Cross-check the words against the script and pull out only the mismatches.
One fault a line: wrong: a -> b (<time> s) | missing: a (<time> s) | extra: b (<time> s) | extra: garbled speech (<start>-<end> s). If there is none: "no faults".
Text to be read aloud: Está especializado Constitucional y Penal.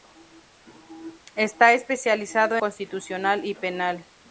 no faults